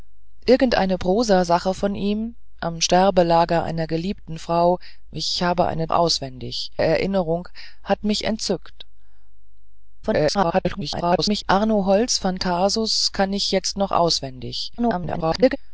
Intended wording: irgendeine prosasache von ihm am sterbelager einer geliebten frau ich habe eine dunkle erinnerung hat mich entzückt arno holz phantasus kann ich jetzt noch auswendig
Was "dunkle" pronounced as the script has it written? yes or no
no